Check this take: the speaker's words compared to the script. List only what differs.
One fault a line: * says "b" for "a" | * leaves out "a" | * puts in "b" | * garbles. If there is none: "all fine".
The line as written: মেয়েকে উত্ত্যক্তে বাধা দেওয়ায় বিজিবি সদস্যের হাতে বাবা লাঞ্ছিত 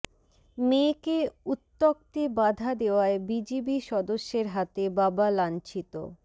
all fine